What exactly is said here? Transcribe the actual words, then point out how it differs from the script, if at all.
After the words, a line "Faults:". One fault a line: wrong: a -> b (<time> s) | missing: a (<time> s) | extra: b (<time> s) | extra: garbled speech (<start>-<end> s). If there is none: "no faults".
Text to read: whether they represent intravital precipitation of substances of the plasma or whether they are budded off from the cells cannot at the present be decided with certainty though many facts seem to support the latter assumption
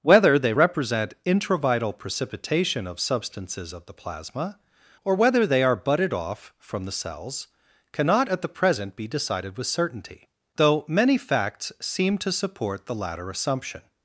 whether they represent intravital precipitation of substances of the plasma or whether they are budded off from the cells cannot at the present be decided with certainty though many facts seem to support the latter assumption
Faults:
no faults